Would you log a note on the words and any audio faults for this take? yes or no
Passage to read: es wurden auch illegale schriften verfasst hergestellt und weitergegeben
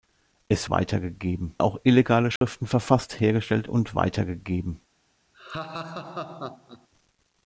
yes